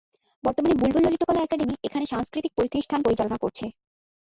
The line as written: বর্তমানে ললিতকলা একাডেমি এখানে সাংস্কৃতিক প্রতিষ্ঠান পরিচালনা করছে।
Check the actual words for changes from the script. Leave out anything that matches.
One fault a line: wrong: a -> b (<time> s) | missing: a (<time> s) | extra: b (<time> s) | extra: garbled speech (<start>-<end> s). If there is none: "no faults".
extra: বুলবুল (0.8 s)